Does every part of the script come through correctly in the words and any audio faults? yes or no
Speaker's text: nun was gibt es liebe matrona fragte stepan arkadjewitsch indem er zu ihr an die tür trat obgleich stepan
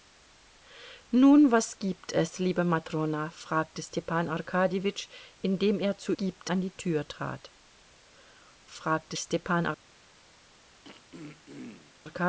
no